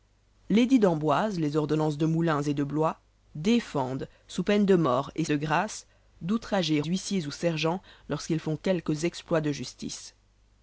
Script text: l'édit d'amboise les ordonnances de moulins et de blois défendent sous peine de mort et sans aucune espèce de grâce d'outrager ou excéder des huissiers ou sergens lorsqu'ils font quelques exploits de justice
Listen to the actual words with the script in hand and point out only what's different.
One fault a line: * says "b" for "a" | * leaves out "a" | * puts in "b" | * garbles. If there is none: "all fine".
* leaves out "sans aucune espèce"
* leaves out "ou excéder des"